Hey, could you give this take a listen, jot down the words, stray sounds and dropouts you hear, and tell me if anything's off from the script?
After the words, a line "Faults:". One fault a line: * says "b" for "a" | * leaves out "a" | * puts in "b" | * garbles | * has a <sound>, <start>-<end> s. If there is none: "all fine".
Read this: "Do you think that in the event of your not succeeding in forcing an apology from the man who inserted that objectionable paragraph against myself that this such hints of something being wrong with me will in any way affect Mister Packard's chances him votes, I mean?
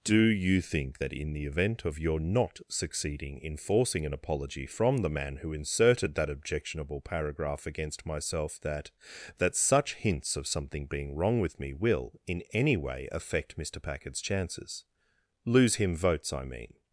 "Do you think that in the event of your not succeeding in forcing an apology from the man who inserted that objectionable paragraph against myself that that such hints of something being wrong with me will in any way affect Mister Packard's chances lose him votes, I mean?
Faults:
* says "that" for "this"
* puts in "lose"